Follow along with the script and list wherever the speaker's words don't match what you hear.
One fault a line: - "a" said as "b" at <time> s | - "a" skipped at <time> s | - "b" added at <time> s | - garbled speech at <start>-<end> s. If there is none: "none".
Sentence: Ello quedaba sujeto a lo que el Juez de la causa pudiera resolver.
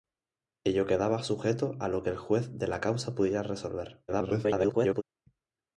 - garbled speech at 4.1-5.0 s